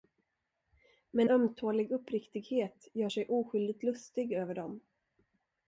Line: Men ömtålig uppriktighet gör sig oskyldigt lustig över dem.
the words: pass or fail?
pass